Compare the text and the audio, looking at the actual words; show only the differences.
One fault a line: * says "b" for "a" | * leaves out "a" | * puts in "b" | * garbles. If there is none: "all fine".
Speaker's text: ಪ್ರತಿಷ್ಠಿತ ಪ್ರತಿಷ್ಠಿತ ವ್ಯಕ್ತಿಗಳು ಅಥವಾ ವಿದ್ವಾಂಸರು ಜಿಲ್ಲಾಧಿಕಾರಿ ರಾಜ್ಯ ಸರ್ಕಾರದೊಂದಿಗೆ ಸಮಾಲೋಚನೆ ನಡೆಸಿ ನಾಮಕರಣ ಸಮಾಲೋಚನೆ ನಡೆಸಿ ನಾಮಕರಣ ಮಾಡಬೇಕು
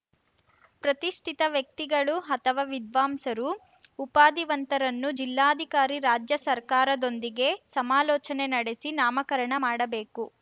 * leaves out "ಪ್ರತಿಷ್ಠಿತ"
* puts in "ಉಪಾಧಿವಂತರನ್ನು"
* leaves out "ಸಮಾಲೋಚನೆ ನಡೆಸಿ ನಾಮಕರಣ"